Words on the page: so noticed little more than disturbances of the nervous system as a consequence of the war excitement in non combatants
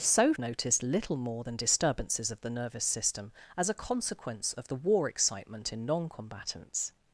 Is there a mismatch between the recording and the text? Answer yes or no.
no